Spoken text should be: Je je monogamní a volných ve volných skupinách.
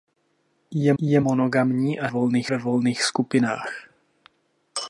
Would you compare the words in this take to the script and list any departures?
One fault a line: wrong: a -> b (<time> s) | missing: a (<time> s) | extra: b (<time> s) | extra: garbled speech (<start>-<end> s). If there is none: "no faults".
no faults